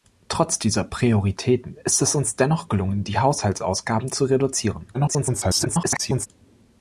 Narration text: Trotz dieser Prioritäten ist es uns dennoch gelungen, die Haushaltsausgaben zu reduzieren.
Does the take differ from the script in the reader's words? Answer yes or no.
yes